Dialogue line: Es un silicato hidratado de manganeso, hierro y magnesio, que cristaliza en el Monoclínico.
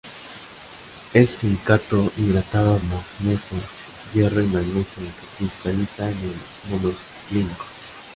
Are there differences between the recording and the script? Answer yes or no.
yes